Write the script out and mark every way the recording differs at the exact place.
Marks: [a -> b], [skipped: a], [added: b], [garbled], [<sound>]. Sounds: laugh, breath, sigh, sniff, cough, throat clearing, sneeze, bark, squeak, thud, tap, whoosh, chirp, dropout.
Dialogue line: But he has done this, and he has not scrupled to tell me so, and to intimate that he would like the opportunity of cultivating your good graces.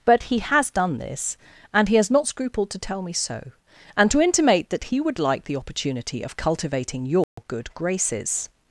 But he has done this, and he has not scrupled to tell me so, and to intimate that he would like the opportunity of cultivating your [dropout] good graces.